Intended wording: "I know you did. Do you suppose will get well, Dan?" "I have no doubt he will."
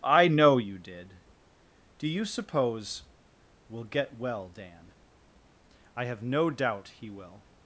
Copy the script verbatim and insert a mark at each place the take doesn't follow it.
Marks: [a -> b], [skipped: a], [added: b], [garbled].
"I know you did. Do you suppose will get well, Dan?" "I have no doubt he will."